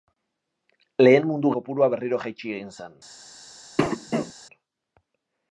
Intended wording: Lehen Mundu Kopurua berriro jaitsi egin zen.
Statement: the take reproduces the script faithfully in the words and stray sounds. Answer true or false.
false